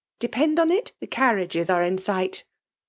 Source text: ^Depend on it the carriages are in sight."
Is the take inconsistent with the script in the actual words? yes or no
no